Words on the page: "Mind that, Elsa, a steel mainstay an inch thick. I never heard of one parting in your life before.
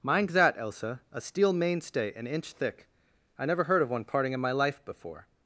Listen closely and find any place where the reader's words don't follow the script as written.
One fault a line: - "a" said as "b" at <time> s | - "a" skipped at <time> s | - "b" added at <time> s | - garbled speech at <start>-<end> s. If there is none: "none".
- "your" said as "my" at 4.4 s